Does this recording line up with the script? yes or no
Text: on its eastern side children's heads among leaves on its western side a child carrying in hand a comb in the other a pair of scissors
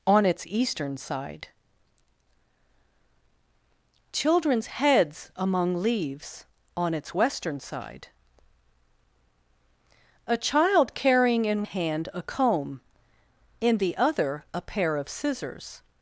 yes